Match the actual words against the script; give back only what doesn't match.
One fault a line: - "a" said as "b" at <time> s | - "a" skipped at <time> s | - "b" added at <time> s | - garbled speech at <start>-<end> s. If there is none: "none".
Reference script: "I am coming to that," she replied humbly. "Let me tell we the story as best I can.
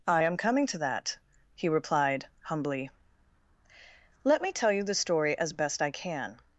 - "she" said as "he" at 1.5 s
- "we" said as "you" at 4.7 s